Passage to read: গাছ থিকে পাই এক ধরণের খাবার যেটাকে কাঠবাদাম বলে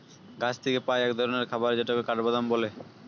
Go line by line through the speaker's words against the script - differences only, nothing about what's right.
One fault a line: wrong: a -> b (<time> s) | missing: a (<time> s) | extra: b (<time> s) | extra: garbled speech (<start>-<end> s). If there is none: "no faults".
no faults